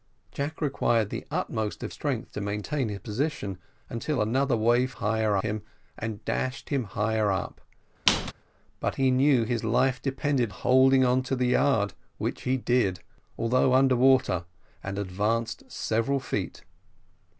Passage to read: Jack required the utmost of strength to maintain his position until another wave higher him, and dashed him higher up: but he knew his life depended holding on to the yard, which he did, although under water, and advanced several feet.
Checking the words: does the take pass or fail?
pass